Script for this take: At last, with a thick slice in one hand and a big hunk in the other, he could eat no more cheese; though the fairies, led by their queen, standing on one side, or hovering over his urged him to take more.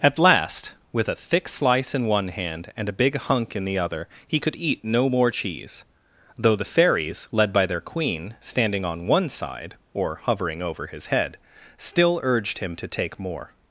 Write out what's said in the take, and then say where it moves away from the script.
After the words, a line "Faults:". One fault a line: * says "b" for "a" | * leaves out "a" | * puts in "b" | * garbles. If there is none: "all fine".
At last, with a thick slice in one hand and a big hunk in the other, he could eat no more cheese; though the fairies, led by their queen, standing on one side, or hovering over his head, still urged him to take more.
Faults:
* puts in "head still"